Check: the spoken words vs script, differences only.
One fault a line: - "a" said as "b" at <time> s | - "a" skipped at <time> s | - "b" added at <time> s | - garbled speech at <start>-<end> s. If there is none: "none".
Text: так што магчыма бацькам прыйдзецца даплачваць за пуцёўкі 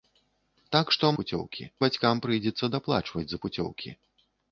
- "магчыма" said as "пуцёўкі" at 1.2 s